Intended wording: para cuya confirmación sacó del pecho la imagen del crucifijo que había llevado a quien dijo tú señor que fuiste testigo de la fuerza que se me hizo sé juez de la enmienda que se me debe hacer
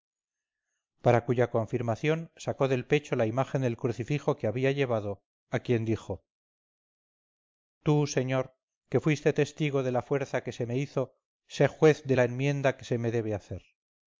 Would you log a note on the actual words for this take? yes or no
no